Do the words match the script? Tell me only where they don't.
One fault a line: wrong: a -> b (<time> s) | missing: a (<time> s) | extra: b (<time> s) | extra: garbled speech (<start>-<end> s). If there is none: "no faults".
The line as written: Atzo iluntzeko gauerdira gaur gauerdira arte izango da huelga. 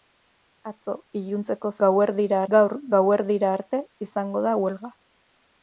no faults